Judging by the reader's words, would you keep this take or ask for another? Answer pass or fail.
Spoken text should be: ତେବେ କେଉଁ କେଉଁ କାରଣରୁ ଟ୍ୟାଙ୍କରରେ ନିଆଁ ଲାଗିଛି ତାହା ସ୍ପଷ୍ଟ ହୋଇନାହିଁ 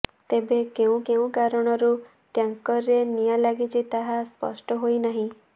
pass